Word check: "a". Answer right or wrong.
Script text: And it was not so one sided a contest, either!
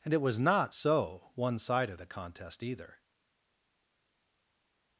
right